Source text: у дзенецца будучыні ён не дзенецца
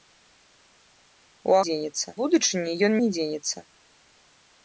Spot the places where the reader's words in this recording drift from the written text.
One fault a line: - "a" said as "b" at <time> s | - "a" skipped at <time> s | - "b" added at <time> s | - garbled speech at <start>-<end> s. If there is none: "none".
none